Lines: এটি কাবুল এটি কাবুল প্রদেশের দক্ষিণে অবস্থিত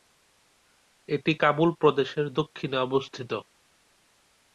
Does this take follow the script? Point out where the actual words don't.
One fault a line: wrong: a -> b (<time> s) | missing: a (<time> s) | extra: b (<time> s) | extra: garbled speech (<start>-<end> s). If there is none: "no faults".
missing: এটি কাবুল (1.7 s)